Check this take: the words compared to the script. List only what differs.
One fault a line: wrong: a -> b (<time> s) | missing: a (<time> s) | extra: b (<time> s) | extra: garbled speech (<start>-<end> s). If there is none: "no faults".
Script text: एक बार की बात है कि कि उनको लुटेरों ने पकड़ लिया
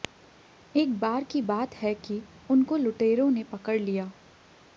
missing: कि (2.2 s)